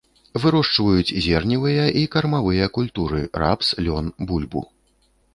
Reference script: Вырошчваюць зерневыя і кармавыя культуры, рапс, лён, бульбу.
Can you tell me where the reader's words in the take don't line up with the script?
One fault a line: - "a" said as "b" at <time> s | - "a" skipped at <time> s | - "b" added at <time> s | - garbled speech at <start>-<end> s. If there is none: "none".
none